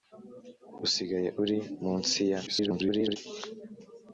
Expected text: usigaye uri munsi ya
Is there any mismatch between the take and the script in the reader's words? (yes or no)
yes